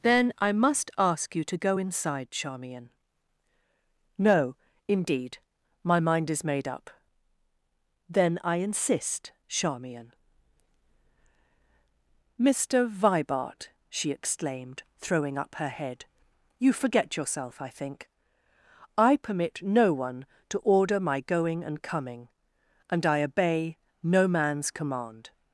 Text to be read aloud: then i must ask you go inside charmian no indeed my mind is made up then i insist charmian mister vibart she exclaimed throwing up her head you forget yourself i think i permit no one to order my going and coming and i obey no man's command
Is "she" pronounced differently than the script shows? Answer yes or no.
no